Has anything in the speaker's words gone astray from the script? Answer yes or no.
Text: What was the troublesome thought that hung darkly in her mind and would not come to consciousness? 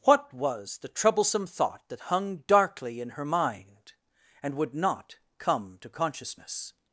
no